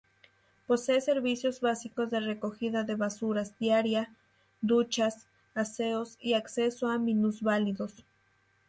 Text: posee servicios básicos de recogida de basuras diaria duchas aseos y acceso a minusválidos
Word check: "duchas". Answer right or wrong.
right